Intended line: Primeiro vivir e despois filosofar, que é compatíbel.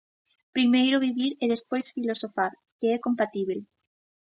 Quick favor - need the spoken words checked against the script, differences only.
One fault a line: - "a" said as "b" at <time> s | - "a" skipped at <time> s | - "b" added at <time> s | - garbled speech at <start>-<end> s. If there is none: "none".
none